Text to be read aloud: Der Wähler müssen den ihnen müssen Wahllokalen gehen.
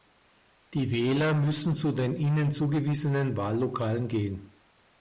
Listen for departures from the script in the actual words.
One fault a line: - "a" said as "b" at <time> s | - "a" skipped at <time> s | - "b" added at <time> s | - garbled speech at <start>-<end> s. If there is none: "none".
- "Der" said as "Die" at 0.7 s
- "zu" added at 1.8 s
- "müssen" said as "zugewiesenen" at 2.5 s